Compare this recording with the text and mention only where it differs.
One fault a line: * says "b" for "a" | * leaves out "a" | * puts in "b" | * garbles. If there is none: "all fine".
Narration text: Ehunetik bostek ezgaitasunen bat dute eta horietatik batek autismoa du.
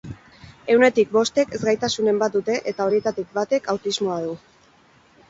all fine